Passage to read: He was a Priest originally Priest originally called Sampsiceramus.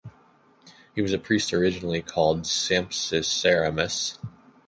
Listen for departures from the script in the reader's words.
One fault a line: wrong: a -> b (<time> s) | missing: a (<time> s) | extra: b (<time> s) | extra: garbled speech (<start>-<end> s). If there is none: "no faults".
missing: Priest originally (2.0 s)